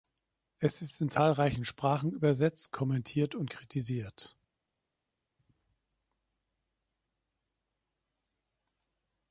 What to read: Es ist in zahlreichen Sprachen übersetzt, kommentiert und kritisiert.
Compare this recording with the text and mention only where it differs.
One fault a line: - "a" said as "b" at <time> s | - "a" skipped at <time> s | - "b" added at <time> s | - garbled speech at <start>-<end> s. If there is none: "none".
none